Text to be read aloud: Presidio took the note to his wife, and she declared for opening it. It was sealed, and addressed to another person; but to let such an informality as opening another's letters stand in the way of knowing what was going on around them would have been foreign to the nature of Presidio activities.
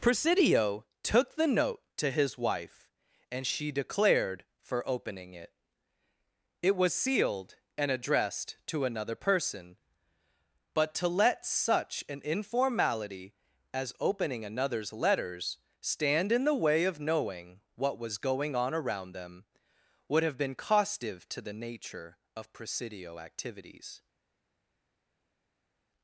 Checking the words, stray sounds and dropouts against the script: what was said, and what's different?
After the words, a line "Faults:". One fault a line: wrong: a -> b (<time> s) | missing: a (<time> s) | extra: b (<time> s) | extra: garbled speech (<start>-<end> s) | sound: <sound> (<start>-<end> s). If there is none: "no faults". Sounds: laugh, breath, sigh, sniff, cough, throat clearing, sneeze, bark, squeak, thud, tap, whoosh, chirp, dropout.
Presidio took the note to his wife, and she declared for opening it. It was sealed, and addressed to another person; but to let such an informality as opening another's letters stand in the way of knowing what was going on around them would have been costive to the nature of Presidio activities.
Faults:
wrong: foreign -> costive (20.5 s)